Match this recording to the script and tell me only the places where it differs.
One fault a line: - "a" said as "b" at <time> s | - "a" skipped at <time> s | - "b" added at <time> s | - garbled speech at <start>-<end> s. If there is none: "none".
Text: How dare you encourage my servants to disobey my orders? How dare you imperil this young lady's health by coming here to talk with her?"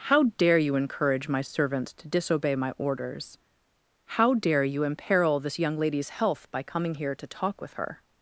none